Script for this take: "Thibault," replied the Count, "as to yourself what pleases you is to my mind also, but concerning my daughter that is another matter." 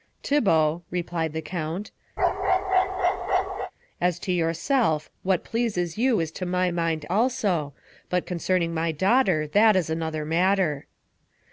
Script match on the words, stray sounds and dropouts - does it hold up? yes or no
no